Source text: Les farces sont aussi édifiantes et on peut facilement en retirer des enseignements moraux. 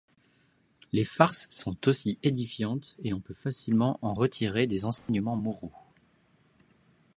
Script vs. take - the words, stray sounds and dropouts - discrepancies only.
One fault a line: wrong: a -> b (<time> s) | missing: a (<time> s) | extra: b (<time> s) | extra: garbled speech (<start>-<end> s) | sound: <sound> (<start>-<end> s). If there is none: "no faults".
sound: dropout (5.0-5.1 s)